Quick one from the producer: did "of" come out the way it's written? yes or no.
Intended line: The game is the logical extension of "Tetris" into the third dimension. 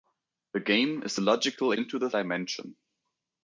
no